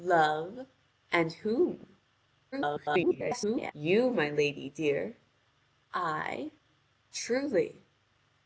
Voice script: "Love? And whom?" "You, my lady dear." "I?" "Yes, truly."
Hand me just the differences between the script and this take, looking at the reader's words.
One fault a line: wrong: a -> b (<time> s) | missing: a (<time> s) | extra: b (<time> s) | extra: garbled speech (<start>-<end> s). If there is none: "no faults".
extra: garbled speech (2.5-3.7 s)
missing: Yes (6.5 s)